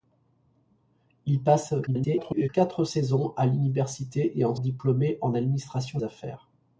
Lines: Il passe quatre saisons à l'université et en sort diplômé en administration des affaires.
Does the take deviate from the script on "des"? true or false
true